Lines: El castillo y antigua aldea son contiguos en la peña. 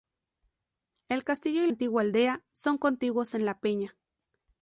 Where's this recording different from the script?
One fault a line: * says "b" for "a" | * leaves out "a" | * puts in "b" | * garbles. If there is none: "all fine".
all fine